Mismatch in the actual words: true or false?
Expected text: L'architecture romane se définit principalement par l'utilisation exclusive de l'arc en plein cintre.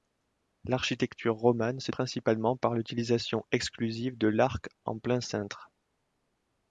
true